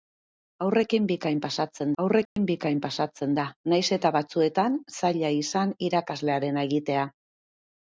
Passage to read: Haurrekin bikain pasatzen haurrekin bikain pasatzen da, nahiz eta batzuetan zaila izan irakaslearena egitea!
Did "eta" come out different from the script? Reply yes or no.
no